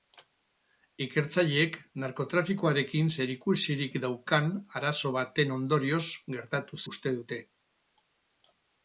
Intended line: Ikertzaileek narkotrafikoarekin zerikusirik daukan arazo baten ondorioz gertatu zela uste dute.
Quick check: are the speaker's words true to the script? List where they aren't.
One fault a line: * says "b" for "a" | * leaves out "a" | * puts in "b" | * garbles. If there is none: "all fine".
* leaves out "zela"